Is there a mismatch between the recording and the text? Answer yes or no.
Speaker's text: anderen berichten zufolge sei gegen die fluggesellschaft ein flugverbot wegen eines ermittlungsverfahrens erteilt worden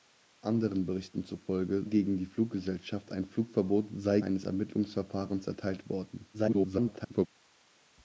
yes